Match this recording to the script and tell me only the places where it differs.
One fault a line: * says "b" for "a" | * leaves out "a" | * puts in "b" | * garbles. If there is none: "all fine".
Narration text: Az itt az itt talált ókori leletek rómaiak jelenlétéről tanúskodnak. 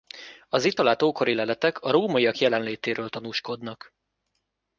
* leaves out "az itt"
* puts in "a"